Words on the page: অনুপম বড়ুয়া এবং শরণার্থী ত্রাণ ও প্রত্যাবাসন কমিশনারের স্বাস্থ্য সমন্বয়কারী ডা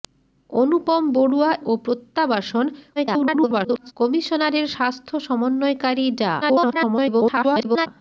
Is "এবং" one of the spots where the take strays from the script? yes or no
yes